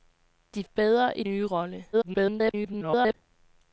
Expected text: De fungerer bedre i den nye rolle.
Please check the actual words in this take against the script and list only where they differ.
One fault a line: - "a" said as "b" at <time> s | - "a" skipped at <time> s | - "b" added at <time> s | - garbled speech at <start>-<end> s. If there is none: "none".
- "fungerer" skipped at 0.6 s
- "den" skipped at 1.2 s
- garbled speech at 1.9-3.1 s